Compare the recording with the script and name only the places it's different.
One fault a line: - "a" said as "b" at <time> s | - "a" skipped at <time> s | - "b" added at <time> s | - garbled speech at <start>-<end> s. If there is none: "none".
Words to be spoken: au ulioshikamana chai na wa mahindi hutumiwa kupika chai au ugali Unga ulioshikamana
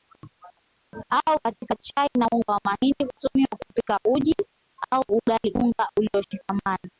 - "ulioshikamana" said as "katika" at 1.4 s
- "unga" added at 2.3 s
- "chai" said as "uji" at 4.1 s